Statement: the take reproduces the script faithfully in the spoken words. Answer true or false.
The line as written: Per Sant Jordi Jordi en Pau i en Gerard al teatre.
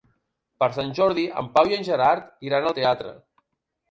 false